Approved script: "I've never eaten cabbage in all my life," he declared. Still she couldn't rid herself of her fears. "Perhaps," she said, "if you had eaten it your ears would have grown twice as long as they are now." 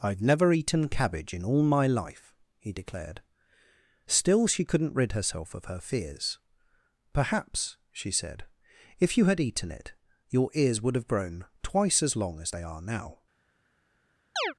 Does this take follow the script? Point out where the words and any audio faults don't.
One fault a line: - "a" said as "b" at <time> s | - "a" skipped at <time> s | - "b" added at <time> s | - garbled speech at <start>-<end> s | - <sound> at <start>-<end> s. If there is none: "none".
- chirp at 14.4-14.5 s